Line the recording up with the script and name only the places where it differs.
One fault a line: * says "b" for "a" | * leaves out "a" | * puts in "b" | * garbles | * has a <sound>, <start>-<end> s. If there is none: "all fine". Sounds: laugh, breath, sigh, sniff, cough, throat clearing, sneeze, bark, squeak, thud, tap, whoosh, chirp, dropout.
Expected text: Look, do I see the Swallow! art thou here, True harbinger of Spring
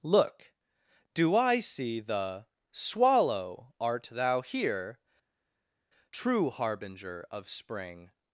all fine